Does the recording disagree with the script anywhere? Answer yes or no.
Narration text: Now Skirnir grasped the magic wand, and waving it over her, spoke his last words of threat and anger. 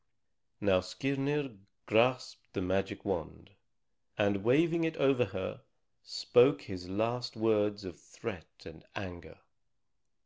no